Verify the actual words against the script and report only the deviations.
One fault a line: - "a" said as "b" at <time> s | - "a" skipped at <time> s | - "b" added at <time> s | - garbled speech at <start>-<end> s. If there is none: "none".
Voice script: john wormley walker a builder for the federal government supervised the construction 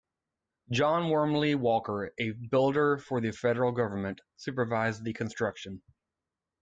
none